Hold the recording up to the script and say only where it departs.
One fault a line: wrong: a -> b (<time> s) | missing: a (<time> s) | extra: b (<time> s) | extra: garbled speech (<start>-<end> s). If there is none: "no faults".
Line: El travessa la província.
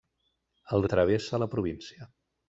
no faults